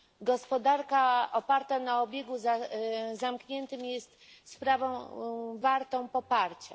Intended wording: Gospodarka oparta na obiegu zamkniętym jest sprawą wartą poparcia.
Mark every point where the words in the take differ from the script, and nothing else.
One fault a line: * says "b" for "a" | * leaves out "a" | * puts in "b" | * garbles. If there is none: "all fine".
all fine